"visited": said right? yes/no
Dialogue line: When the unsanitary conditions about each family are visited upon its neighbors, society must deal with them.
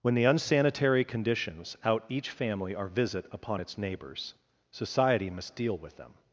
no